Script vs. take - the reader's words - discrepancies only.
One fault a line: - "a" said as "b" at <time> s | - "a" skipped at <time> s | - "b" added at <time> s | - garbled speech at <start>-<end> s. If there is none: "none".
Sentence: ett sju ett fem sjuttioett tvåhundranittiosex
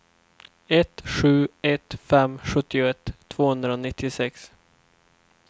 none